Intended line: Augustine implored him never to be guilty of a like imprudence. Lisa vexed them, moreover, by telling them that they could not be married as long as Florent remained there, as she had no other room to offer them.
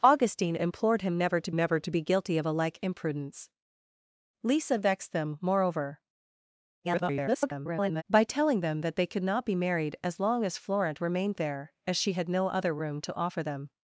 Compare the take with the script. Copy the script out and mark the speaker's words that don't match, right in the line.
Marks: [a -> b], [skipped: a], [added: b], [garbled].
Augustine implored him never to [added: never to] be guilty of a like imprudence. Lisa vexed them, moreover, [garbled] by telling them that they could not be married as long as Florent remained there, as she had no other room to offer them.